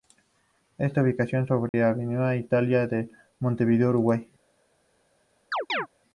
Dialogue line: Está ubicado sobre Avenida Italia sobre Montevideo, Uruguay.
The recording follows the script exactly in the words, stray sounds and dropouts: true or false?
false